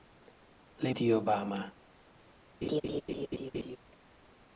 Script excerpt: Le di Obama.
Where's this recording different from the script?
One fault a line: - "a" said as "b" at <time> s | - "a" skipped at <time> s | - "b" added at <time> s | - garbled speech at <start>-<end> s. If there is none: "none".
none